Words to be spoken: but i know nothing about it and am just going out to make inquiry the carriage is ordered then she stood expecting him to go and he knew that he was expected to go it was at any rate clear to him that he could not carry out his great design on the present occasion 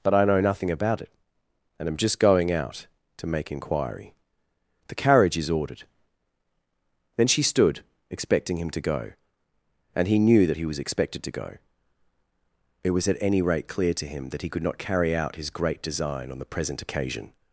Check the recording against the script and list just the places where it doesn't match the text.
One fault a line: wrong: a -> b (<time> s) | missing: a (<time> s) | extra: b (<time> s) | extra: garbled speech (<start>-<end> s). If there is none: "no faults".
no faults